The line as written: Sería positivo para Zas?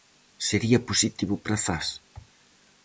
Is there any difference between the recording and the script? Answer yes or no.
no